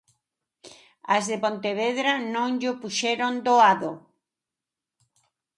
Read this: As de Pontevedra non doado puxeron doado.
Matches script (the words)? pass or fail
fail